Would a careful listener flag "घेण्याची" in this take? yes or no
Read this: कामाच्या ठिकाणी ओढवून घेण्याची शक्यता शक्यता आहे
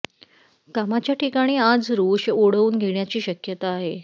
no